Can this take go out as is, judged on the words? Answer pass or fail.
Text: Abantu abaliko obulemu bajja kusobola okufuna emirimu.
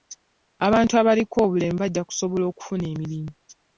pass